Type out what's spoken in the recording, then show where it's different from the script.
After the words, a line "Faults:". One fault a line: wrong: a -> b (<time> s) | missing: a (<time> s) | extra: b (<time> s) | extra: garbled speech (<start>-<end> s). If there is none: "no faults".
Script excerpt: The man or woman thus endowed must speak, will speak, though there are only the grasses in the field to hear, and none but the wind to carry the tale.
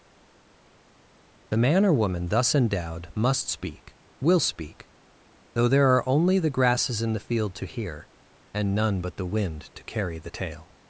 The man or woman thus endowed must speak, will speak, though there are only the grasses in the field to hear, and none but the wind to carry the tale.
Faults:
no faults